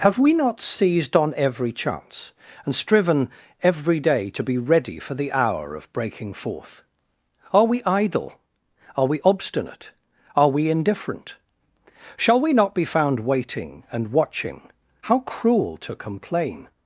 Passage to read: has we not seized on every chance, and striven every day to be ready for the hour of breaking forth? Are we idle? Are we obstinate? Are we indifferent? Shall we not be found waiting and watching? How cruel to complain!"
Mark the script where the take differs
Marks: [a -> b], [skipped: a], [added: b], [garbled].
[has -> have] we not seized on every chance, and striven every day to be ready for the hour of breaking forth? Are we idle? Are we obstinate? Are we indifferent? Shall we not be found waiting and watching? How cruel to complain!"